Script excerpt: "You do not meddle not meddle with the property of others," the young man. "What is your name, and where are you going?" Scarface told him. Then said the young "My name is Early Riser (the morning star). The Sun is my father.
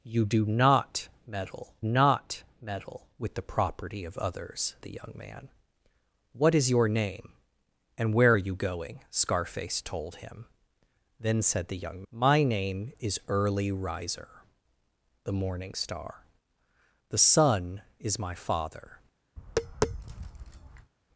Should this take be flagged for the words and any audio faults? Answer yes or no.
yes